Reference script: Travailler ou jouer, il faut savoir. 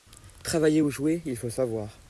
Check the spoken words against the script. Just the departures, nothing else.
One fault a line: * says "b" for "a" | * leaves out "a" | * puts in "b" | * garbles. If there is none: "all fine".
all fine